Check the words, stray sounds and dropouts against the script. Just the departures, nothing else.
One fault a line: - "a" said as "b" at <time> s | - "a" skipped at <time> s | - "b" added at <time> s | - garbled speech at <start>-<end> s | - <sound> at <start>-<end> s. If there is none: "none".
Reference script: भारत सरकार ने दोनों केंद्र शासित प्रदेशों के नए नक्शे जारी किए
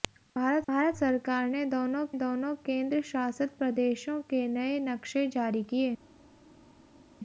- "भारत" added at 0.7 s
- "दोनों" added at 2.2 s